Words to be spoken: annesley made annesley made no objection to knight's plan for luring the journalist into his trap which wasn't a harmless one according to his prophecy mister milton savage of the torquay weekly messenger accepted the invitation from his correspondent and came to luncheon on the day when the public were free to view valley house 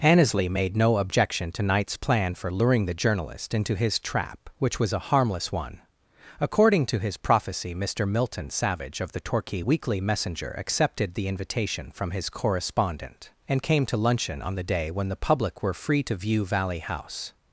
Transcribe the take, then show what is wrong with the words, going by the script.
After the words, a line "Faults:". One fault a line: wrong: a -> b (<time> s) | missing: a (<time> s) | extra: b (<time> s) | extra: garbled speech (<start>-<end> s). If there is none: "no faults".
annesley made no objection to knight's plan for luring the journalist into his trap which was a harmless one according to his prophecy mister milton savage of the torquay weekly messenger accepted the invitation from his correspondent and came to luncheon on the day when the public were free to view valley house
Faults:
missing: annesley made (0.8 s)
wrong: wasn't -> was (4.8 s)